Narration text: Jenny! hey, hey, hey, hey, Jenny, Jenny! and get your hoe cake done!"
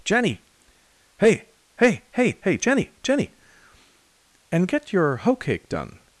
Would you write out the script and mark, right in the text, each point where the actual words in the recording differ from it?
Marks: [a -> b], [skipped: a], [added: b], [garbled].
Jenny! hey, hey, hey, hey, Jenny, Jenny! and get your hoe cake done!"